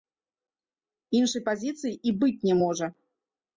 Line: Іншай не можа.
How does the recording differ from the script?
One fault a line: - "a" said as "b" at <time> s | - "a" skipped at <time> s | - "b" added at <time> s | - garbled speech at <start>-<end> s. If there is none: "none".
- "пазіцыі і быць" added at 1.5 s